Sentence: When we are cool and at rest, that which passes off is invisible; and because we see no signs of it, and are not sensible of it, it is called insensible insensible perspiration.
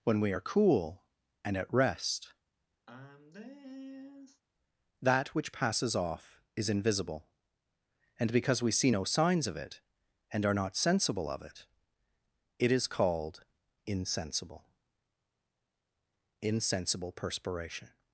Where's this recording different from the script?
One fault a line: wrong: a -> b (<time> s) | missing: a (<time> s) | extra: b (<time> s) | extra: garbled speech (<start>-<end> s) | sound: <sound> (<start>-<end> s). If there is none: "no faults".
sound: sigh (2.9-4.4 s)